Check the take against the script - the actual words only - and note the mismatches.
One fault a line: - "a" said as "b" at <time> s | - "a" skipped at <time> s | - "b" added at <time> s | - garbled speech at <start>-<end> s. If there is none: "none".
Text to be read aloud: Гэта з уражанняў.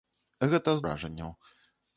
none